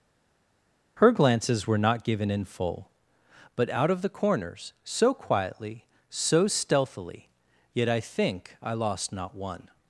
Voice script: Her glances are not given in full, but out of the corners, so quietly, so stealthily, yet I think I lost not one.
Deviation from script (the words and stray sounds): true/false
true